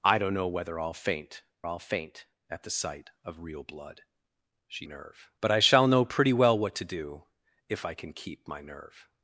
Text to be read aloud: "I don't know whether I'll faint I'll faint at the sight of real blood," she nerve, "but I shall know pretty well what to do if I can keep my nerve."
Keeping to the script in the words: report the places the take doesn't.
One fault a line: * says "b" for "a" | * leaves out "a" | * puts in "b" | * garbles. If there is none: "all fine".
all fine